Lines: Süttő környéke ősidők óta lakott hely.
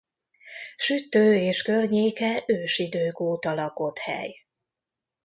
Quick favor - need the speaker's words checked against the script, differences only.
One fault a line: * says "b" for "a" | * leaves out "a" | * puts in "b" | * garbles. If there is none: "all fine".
* puts in "és"